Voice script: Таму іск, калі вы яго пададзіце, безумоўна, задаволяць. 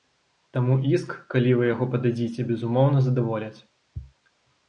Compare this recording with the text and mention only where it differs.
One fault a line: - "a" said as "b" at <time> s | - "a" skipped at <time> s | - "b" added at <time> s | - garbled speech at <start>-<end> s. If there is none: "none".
none